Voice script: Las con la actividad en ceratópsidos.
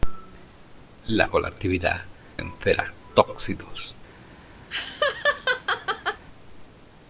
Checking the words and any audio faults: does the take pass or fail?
fail